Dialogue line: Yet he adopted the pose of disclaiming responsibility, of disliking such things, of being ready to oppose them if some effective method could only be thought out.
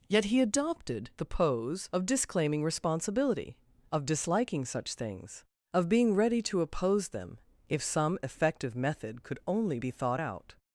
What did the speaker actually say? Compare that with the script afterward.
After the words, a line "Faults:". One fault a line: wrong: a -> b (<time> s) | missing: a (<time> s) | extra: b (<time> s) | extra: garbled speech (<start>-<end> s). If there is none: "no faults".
Yet he adopted the pose of disclaiming responsibility, of disliking such things, of being ready to oppose them if some effective method could only be thought out.
Faults:
no faults